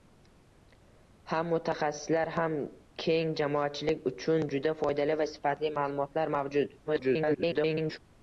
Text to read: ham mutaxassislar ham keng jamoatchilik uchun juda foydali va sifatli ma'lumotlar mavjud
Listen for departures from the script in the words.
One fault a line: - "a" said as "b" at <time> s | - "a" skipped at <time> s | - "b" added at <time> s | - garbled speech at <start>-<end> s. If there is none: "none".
- garbled speech at 6.8-8.0 s